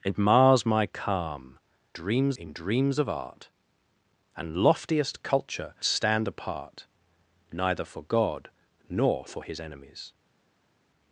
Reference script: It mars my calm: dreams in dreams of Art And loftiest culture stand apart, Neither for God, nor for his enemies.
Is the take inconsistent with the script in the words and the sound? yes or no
no